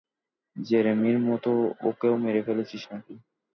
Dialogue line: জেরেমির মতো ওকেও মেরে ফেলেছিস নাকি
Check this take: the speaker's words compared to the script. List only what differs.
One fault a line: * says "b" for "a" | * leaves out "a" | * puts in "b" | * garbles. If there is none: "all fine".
all fine